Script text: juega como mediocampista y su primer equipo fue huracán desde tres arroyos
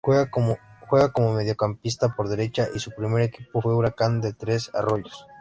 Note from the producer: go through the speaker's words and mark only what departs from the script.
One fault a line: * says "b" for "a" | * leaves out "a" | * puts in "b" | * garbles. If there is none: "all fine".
* puts in "por derecha"
* says "de" for "desde"